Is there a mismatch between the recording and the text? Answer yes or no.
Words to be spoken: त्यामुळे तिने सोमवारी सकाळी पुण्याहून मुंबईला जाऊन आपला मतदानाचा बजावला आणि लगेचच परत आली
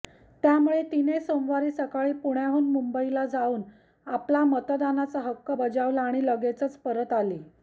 yes